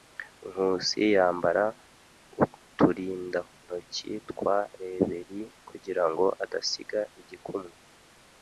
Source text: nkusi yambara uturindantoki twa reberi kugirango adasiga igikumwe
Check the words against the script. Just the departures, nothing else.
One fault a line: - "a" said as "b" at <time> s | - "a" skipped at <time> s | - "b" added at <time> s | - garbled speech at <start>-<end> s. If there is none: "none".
none